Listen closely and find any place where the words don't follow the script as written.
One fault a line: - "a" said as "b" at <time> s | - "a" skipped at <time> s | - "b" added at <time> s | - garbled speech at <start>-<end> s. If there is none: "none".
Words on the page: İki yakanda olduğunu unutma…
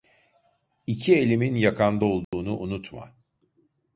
- "elimin" added at 1.1 s